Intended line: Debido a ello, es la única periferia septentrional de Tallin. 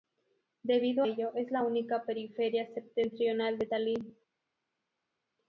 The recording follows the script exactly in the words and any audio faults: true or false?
false